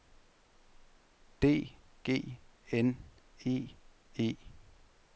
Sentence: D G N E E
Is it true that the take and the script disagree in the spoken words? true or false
false